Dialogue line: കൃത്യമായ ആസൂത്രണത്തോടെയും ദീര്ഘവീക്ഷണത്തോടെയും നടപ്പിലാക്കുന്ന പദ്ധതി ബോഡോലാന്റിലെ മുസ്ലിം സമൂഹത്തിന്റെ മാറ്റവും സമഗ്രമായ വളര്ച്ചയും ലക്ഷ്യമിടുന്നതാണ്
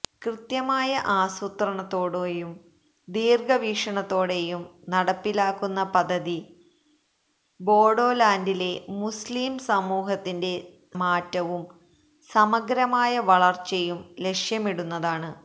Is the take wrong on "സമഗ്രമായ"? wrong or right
right